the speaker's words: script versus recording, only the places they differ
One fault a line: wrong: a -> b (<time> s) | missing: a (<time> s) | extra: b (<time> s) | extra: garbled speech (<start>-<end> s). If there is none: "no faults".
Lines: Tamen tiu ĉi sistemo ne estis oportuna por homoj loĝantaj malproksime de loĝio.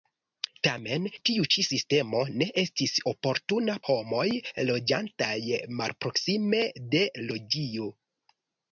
missing: por (3.7 s)